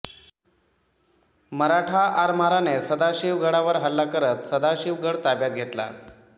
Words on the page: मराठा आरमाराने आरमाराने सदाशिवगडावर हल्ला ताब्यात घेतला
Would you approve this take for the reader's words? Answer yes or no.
no